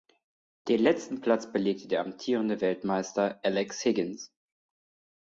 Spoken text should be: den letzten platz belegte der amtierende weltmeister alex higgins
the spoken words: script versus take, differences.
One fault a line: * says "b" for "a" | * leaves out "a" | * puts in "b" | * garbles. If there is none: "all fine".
all fine